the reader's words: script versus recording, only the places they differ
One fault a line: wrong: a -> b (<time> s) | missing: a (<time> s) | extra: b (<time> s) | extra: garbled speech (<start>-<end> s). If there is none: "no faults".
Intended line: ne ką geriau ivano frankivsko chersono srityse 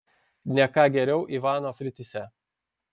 missing: frankivsko chersono (1.7 s)